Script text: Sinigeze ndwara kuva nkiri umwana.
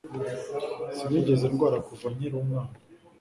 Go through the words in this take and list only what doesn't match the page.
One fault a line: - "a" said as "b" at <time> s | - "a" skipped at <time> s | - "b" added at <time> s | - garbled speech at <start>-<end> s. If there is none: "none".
none